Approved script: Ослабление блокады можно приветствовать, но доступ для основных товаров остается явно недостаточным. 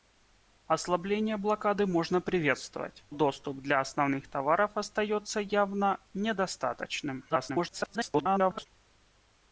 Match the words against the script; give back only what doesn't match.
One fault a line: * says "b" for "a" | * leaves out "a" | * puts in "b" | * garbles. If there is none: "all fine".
* leaves out "но"
* garbles